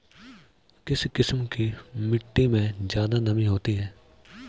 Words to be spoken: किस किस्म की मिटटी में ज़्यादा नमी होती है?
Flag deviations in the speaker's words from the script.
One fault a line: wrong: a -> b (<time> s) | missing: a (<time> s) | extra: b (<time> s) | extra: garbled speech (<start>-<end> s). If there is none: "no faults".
no faults